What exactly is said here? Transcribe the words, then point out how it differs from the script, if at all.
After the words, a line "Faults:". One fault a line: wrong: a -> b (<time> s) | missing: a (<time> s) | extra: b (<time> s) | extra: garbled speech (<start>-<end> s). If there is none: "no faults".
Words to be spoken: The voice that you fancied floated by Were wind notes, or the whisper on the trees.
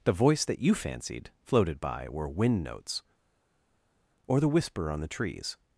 The voice that you fancied floated by Were wind notes, or the whisper on the trees.
Faults:
no faults